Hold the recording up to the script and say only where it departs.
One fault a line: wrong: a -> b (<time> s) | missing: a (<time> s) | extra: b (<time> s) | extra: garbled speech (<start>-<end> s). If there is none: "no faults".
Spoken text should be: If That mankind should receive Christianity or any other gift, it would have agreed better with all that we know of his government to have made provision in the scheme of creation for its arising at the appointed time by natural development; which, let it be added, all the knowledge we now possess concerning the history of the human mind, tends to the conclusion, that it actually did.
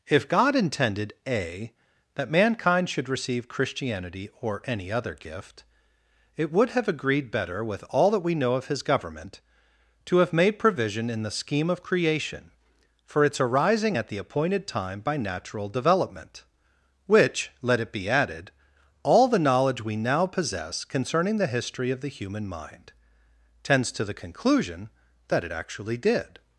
extra: God intended A (0.3 s)